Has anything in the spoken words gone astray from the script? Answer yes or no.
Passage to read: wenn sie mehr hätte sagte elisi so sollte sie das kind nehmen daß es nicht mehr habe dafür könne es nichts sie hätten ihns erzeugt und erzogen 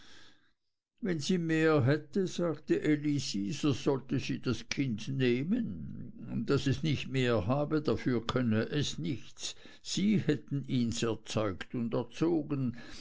no